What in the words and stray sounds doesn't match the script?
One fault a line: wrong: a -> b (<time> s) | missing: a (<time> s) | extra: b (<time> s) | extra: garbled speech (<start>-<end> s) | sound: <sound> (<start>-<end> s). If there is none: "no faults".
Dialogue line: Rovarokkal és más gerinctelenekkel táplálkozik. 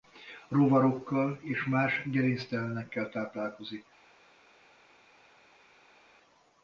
no faults